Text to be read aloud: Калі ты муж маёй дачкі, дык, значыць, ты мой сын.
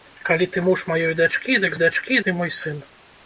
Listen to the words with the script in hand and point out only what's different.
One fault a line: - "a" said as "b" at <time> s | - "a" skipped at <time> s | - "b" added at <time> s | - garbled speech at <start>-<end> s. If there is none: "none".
- "значыць" said as "дачкі" at 1.8 s